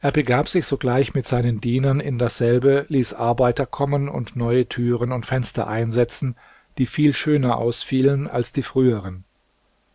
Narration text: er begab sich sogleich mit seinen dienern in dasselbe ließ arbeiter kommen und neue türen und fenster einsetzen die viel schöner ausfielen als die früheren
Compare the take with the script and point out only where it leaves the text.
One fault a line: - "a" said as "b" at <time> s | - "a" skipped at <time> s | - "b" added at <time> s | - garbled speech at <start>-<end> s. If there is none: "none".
none